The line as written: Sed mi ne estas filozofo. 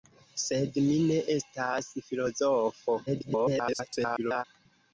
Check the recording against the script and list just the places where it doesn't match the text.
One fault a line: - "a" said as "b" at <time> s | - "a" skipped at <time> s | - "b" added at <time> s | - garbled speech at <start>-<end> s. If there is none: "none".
- garbled speech at 3.1-4.4 s